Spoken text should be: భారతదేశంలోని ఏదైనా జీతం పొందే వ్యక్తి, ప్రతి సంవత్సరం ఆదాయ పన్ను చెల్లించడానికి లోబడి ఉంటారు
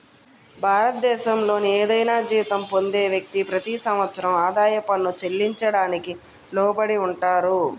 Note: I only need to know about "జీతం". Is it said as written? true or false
true